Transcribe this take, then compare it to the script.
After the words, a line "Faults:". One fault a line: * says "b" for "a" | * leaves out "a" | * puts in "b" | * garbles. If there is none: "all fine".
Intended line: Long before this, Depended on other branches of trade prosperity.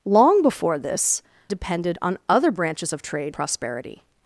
Long before this, Depended on other branches of trade prosperity.
Faults:
all fine